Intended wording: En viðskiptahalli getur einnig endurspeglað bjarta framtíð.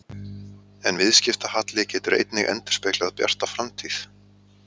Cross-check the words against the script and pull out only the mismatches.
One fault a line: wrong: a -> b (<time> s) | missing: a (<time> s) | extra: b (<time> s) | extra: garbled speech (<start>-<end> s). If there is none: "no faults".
no faults